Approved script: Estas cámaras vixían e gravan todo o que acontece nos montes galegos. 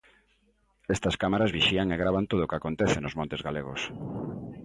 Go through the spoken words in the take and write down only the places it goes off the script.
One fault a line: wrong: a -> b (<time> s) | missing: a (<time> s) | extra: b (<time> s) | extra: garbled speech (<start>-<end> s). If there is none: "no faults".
no faults